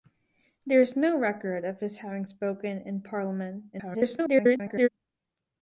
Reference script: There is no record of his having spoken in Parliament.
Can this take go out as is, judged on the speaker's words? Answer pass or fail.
fail